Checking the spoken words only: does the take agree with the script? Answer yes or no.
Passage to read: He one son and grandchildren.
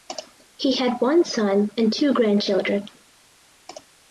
no